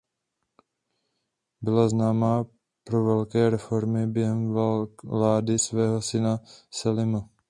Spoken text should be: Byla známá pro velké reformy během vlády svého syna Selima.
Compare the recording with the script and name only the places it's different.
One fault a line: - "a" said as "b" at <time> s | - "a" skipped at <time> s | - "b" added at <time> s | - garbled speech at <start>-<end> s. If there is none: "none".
none